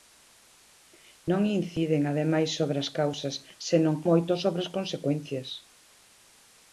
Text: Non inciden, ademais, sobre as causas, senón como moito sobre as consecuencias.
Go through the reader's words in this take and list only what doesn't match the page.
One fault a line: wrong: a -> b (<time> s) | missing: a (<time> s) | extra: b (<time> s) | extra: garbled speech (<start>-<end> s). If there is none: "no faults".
missing: como (4.0 s)